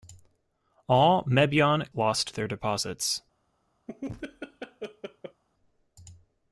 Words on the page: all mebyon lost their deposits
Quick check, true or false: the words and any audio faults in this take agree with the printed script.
false